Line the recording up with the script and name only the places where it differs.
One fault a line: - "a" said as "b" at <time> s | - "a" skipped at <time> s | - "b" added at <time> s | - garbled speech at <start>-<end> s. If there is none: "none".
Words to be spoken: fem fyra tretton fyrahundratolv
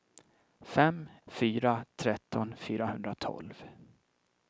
none